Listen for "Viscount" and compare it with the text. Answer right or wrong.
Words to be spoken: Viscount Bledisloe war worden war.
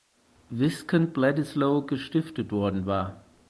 right